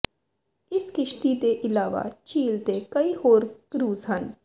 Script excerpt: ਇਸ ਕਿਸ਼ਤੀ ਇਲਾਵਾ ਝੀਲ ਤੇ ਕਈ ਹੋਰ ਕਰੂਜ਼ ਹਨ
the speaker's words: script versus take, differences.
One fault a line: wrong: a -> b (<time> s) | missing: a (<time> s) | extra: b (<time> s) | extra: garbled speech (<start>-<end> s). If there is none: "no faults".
extra: ਦੇ (1.4 s)